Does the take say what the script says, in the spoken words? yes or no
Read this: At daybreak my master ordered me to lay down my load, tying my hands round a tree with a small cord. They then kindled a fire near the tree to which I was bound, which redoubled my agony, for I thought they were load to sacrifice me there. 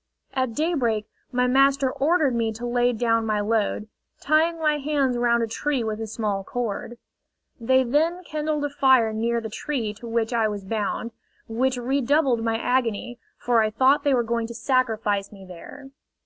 no